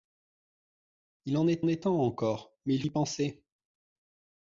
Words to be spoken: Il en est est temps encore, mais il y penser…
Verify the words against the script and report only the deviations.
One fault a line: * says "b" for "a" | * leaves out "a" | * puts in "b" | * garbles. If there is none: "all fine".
all fine